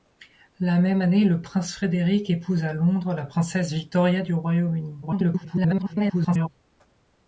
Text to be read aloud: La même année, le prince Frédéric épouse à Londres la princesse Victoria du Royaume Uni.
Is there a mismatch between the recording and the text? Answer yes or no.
yes